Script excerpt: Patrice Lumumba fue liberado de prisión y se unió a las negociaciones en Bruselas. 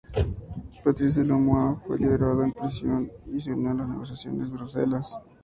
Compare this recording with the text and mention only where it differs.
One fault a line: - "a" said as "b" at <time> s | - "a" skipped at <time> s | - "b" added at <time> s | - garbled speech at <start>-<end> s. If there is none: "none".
none